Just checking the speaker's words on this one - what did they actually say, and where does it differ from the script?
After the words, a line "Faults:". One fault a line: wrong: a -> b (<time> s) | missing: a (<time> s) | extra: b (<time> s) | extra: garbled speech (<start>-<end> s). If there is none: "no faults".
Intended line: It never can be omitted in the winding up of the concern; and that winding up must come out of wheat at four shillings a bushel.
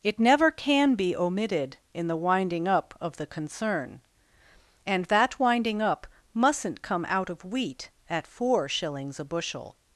It never can be omitted in the winding up of the concern; and that winding up mustn't come out of wheat at four shillings a bushel.
Faults:
wrong: must -> mustn't (6.3 s)